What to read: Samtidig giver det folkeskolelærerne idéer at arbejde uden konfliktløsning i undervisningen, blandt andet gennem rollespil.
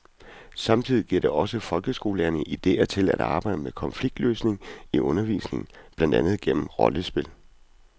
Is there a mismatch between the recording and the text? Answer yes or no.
yes